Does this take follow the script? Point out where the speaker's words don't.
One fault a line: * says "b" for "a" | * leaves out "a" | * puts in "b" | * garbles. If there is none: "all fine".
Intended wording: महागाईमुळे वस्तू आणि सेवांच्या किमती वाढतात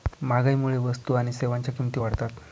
all fine